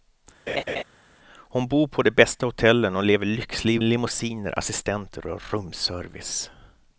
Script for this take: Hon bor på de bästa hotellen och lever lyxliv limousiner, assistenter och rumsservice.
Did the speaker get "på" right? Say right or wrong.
right